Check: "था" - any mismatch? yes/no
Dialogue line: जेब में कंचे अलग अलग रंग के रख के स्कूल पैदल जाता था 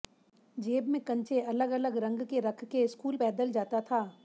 no